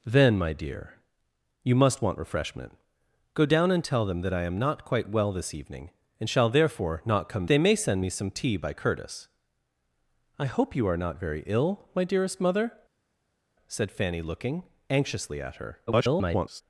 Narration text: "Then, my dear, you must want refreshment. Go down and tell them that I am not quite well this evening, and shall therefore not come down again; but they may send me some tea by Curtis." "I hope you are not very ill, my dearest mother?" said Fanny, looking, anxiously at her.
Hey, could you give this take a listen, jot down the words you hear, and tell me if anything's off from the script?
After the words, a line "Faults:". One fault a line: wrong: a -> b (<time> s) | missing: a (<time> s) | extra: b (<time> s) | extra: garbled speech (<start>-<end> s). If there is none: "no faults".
"Then, my dear, you must want refreshment. Go down and tell them that I am not quite well this evening, and shall therefore not come they may send me some tea by Curtis." "I hope you are not very ill, my dearest mother?" said Fanny, looking, anxiously at her. [garbled]
Faults:
missing: down again but (7.5 s)
extra: garbled speech (15.9-16.6 s)